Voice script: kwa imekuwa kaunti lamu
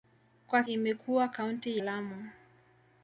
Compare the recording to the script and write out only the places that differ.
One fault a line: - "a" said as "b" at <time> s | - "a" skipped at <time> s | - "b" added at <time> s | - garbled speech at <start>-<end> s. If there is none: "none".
none